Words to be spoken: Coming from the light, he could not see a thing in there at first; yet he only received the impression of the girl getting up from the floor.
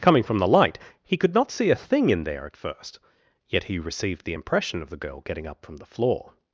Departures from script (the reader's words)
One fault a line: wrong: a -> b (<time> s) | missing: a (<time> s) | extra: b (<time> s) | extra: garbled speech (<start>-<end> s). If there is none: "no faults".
missing: only (3.8 s)